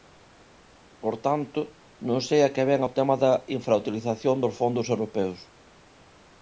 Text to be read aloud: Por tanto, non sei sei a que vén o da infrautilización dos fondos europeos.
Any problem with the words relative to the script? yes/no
yes